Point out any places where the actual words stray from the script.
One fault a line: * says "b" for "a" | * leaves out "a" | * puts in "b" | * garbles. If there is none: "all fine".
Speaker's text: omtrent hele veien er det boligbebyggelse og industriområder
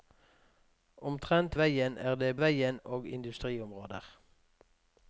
* leaves out "hele"
* says "veien" for "boligbebyggelse"